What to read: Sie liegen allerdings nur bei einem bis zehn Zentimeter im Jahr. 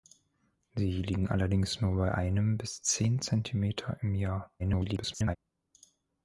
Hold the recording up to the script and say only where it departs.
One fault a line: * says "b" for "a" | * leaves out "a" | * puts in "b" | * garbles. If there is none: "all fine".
* garbles